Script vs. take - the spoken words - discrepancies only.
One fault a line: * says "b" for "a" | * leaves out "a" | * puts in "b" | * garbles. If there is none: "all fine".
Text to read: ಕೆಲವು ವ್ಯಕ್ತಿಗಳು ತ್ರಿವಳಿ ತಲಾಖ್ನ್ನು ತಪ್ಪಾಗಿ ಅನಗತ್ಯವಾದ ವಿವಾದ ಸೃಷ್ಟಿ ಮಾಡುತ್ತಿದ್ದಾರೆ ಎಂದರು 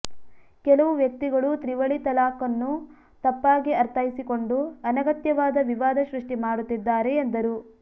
* puts in "ಅರ್ಥೈಸಿಕೊಂಡು"